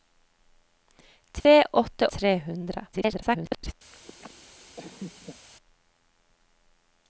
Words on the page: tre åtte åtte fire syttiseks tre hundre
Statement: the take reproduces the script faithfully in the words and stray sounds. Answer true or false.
false